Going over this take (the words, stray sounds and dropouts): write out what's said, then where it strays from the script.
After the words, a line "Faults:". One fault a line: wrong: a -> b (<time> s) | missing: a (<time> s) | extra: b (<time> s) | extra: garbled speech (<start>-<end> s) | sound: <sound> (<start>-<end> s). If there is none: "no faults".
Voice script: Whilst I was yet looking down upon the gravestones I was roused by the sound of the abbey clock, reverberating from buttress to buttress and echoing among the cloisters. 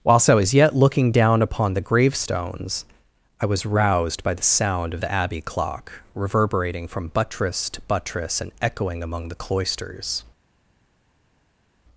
Whilst I was yet looking down upon the gravestones I was roused by the sound of the abbey clock, reverberating from buttress to buttress and echoing among the cloisters.
Faults:
no faults